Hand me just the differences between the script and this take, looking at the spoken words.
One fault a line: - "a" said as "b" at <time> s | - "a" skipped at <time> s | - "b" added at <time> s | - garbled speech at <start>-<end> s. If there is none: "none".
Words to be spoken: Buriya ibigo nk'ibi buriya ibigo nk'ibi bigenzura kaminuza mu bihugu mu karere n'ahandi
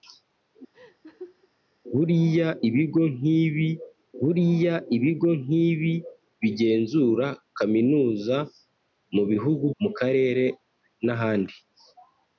none